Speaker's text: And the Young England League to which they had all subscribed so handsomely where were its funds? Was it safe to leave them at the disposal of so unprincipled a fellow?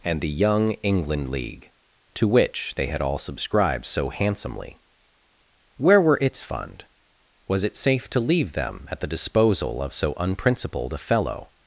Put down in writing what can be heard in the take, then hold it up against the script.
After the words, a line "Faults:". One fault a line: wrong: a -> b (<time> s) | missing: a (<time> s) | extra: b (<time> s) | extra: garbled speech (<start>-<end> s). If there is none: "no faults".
And the Young England League to which they had all subscribed so handsomely where were its fund? Was it safe to leave them at the disposal of so unprincipled a fellow?
Faults:
wrong: funds -> fund (6.4 s)